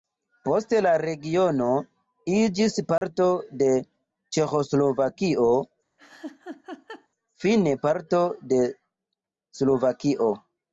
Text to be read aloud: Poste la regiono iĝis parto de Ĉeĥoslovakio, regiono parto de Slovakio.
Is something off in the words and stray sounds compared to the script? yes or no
yes